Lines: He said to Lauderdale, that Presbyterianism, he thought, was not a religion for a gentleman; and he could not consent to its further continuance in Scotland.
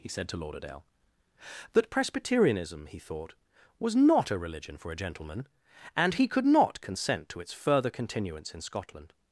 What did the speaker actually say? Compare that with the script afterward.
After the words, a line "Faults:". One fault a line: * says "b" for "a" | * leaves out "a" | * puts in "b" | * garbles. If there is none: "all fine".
He said to Lauderdale, that Presbyterianism, he thought, was not a religion for a gentleman; and he could not consent to its further continuance in Scotland.
Faults:
all fine